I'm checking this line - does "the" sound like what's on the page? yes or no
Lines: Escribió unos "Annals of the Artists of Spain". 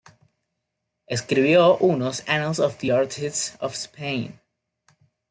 yes